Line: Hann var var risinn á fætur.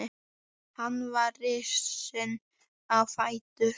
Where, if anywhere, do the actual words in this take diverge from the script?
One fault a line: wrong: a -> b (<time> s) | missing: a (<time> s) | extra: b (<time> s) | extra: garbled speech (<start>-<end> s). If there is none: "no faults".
missing: var (1.3 s)